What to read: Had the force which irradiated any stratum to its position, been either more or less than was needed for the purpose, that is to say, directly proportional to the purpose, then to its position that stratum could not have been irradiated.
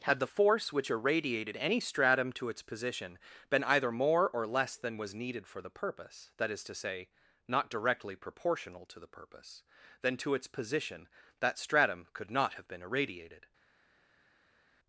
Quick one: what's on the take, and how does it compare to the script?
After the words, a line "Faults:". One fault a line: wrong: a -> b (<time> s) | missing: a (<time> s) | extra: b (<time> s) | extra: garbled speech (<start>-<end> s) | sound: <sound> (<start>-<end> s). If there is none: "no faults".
Had the force which irradiated any stratum to its position, been either more or less than was needed for the purpose, that is to say, not directly proportional to the purpose, then to its position that stratum could not have been irradiated.
Faults:
extra: not (7.5 s)